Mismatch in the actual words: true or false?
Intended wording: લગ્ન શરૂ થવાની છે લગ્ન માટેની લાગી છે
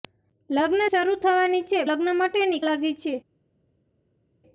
false